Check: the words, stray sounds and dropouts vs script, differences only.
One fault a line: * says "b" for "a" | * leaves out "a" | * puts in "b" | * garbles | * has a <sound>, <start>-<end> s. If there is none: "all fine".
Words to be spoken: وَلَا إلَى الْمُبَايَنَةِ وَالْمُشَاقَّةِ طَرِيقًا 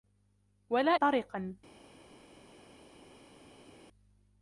* leaves out "إلَى الْمُبَايَنَةِ وَالْمُشَاقَّةِ"